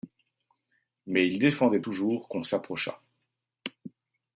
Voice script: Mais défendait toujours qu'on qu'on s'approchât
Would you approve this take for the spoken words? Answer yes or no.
no